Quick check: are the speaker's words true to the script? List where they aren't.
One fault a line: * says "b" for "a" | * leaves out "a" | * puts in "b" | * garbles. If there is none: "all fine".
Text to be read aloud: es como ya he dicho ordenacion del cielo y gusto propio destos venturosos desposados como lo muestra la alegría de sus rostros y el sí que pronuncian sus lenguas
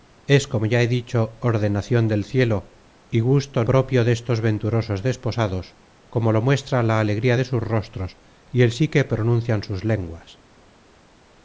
all fine